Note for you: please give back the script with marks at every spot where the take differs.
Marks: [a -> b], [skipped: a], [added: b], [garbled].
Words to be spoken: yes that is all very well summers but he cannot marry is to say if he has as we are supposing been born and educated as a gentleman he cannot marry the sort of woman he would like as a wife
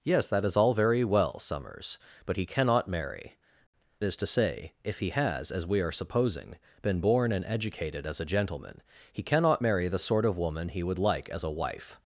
yes that is all very well summers but he cannot marry is to say if he has as we are supposing been born and educated as a gentleman he cannot marry the sort of woman he would like as a wife